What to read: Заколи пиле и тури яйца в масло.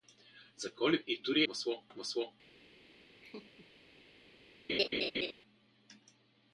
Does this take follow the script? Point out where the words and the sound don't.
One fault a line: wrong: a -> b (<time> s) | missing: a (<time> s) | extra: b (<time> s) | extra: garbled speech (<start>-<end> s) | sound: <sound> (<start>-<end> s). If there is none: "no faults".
missing: пиле (1.0 s)
wrong: яйца -> масло (1.5 s)
sound: laugh (3.2-3.7 s)
sound: laugh (4.7-5.3 s)